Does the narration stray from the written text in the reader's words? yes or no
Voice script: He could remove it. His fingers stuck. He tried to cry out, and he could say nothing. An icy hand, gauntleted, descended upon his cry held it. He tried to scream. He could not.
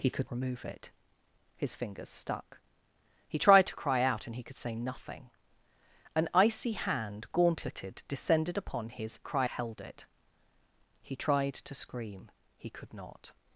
no